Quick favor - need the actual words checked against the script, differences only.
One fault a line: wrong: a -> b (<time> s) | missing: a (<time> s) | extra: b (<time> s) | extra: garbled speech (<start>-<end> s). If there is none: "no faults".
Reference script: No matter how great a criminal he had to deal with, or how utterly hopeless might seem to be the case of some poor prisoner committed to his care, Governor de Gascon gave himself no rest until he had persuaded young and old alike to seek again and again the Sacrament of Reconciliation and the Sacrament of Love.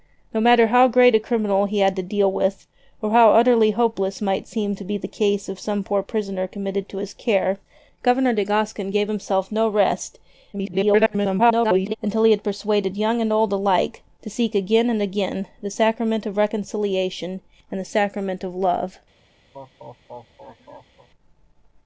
extra: garbled speech (10.5-12.0 s)